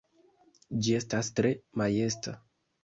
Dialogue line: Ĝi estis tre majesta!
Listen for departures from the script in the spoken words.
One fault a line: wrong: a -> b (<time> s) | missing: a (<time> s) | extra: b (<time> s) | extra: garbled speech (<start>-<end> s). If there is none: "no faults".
wrong: estis -> estas (1.0 s)